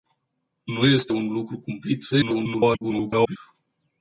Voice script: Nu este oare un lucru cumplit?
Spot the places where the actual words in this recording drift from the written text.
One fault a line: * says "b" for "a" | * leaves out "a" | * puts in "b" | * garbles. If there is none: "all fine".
* leaves out "oare"
* garbles